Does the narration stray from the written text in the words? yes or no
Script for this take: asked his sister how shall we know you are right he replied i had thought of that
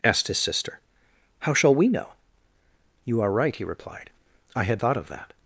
no